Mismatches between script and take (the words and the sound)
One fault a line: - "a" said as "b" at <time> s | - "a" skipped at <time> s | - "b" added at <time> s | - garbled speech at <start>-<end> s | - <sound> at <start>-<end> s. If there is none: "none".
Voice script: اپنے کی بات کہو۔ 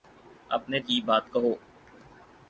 none